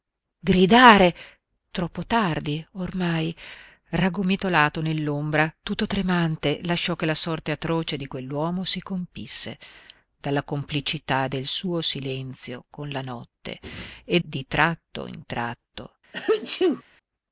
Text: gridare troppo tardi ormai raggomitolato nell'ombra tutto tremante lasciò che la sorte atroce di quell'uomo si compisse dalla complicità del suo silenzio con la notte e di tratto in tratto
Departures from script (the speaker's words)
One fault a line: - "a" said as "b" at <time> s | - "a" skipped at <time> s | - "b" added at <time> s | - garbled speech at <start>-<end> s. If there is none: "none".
none